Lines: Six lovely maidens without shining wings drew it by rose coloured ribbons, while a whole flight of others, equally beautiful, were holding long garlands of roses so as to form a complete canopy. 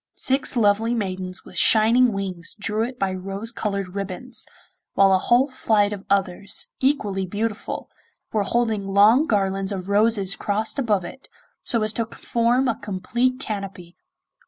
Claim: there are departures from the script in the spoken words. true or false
true